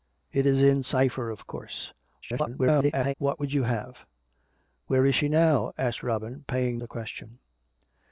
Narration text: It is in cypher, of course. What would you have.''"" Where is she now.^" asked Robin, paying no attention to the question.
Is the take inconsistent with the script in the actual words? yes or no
yes